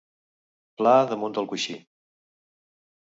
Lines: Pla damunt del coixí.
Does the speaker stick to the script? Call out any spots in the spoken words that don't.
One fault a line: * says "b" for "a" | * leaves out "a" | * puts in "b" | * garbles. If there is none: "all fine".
all fine